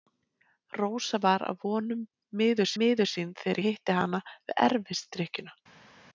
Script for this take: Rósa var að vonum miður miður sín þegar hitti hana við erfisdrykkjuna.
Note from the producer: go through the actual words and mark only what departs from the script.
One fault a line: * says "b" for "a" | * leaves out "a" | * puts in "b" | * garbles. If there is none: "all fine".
all fine